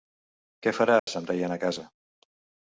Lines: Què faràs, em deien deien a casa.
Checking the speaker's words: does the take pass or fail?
fail